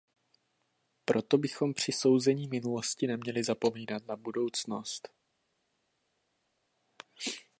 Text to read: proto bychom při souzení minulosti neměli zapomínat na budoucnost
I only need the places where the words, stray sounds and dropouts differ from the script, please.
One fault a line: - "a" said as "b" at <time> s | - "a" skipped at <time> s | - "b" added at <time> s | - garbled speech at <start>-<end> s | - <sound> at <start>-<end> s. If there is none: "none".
none